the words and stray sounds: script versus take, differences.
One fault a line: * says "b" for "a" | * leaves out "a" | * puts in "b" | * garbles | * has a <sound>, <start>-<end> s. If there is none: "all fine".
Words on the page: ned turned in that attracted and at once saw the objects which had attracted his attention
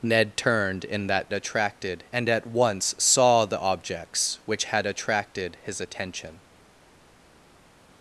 all fine